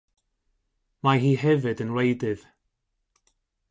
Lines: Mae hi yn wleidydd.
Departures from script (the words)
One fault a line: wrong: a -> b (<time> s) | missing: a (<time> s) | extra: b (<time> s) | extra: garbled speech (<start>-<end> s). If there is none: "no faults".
extra: hefyd (1.4 s)